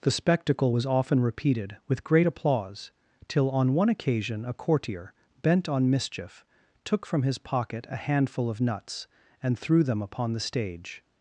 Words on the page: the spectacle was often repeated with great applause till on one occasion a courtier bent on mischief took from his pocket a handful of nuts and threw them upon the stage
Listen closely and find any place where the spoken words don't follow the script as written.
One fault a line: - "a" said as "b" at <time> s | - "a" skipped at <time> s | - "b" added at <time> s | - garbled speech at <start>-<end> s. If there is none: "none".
none